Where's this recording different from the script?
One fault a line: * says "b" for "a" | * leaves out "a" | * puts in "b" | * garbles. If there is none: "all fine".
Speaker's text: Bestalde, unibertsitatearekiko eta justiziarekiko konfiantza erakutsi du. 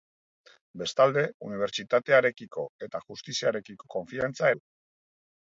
* leaves out "erakutsi"